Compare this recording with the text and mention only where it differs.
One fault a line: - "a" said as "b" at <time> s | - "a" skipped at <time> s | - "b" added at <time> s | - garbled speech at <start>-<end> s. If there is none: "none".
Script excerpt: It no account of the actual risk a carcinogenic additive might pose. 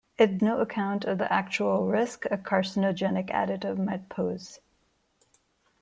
none